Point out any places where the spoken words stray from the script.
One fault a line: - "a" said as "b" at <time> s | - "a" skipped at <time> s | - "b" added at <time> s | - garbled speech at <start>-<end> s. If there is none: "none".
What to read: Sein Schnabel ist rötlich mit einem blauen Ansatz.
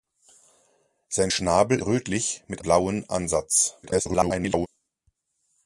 - "ist" skipped at 1.8 s
- "einem" skipped at 2.6 s
- garbled speech at 3.8-4.7 s